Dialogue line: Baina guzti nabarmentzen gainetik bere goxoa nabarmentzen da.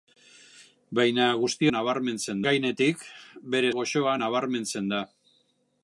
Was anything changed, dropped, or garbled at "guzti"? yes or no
no